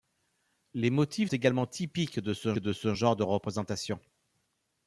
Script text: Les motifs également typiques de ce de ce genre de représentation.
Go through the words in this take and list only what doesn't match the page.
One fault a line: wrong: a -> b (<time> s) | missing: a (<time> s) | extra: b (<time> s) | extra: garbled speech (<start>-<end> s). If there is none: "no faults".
no faults